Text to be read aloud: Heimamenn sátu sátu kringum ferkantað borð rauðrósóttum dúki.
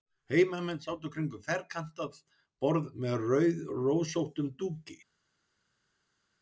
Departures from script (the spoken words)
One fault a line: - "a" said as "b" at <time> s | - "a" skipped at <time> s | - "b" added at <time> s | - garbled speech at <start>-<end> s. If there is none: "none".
- "sátu" skipped at 1.1 s
- "með" added at 3.0 s